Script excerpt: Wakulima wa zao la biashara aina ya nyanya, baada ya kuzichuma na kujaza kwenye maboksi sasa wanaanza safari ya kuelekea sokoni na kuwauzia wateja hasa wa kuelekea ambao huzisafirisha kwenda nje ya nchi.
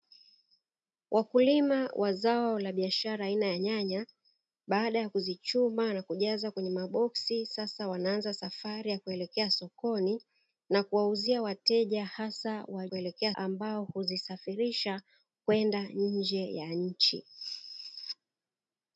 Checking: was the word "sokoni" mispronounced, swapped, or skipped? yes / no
no